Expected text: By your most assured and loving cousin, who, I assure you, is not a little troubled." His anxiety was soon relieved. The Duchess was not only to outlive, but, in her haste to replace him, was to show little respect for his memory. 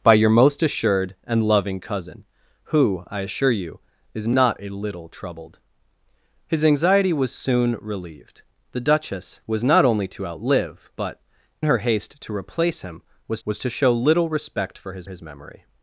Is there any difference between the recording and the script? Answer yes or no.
yes